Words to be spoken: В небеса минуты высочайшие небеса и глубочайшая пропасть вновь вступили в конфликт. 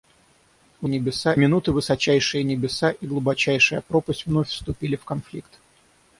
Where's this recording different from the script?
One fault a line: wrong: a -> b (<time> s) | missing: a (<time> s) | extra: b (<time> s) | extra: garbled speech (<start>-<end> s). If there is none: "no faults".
no faults